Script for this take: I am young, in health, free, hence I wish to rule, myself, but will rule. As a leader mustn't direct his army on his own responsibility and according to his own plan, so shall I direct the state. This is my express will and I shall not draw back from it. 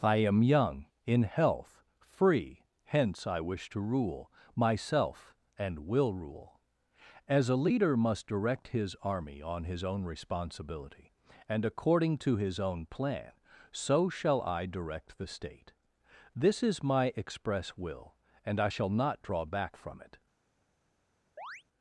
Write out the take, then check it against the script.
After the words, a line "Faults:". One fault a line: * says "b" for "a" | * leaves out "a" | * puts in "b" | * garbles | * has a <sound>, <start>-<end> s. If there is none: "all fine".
I am young, in health, free, hence I wish to rule, myself, and will rule. As a leader must direct his army on his own responsibility and according to his own plan, so shall I direct the state. This is my express will and I shall not draw back from it.
Faults:
* says "and" for "but"
* says "must" for "mustn't"
* has a chirp, 21.4-21.6 s